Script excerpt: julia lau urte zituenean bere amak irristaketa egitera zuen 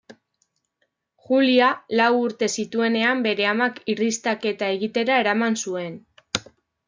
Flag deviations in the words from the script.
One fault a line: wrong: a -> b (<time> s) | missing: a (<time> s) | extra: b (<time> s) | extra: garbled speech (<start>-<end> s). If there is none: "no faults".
extra: eraman (5.2 s)